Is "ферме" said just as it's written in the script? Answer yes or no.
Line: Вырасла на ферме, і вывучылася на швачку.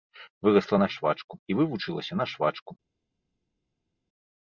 no